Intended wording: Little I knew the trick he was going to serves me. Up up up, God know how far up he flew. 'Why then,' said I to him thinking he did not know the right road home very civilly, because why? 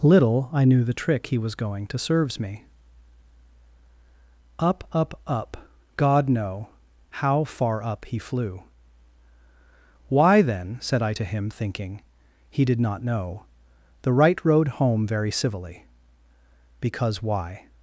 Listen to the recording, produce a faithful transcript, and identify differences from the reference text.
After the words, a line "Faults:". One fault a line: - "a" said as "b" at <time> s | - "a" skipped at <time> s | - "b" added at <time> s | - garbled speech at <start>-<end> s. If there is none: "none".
Little I knew the trick he was going to serves me. Up up up, God know how far up he flew. 'Why then,' said I to him thinking he did not know the right road home very civilly, because why?
Faults:
none